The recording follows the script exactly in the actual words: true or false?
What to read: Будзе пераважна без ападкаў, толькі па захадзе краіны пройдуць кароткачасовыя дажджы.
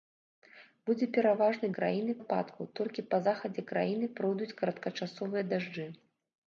false